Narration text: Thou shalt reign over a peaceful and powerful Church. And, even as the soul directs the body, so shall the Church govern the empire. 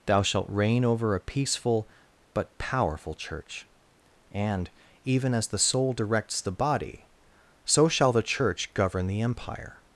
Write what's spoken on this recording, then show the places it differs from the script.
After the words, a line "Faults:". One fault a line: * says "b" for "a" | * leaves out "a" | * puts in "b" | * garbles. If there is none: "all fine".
Thou shalt reign over a peaceful but powerful Church. And, even as the soul directs the body, so shall the Church govern the empire.
Faults:
* says "but" for "and"